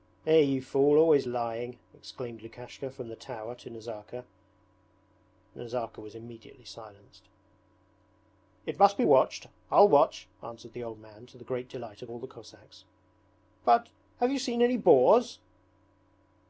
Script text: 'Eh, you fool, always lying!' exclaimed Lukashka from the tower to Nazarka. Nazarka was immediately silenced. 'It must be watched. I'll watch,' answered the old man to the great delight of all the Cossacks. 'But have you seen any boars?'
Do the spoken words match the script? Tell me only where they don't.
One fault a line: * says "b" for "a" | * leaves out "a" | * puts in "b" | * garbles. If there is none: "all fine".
all fine